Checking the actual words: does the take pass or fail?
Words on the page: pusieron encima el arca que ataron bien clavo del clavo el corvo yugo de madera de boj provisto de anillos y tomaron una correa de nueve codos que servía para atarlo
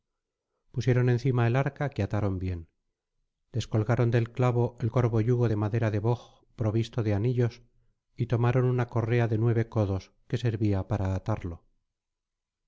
fail